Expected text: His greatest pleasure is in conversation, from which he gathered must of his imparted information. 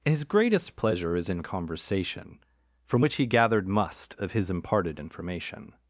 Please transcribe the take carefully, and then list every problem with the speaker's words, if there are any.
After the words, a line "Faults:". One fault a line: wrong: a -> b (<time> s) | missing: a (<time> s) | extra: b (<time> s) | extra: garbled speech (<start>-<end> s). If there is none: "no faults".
His greatest pleasure is in conversation, from which he gathered must of his imparted information.
Faults:
no faults